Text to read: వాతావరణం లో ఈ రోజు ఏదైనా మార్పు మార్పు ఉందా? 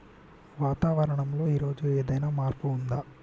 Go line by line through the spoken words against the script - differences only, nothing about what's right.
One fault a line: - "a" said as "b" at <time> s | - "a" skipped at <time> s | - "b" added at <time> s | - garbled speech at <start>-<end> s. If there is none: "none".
- "మార్పు" skipped at 2.7 s